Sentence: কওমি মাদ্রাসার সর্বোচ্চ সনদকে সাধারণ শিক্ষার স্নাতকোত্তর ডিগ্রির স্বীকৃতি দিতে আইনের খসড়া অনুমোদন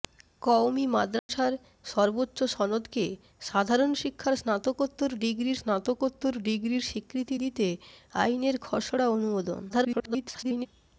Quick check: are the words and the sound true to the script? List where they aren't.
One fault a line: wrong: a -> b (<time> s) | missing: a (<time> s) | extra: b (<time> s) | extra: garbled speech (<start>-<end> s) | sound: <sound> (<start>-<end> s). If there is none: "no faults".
sound: dropout (1.2-1.3 s)
extra: স্নাতকোত্তর ডিগ্রির (5.6 s)
extra: garbled speech (9.7-10.7 s)